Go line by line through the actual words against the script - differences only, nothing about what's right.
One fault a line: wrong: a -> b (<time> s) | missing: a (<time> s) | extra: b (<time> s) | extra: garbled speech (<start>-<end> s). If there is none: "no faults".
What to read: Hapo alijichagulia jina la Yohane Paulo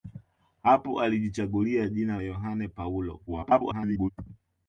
missing: la (2.2 s)
extra: garbled speech (3.3-4.1 s)